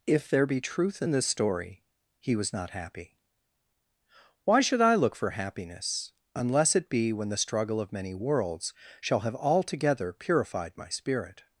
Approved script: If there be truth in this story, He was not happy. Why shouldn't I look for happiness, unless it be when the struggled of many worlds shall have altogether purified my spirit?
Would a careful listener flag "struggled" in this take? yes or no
yes